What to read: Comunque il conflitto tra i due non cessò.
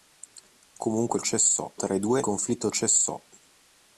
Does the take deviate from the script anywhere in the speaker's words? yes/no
yes